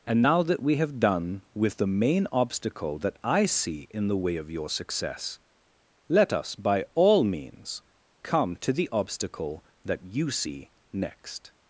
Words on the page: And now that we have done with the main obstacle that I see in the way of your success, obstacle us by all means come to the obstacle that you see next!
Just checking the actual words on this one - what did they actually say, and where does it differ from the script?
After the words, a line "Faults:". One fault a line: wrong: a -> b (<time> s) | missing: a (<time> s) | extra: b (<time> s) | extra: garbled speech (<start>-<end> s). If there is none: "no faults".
And now that we have done with the main obstacle that I see in the way of your success, let us by all means come to the obstacle that you see next!
Faults:
wrong: obstacle -> let (6.1 s)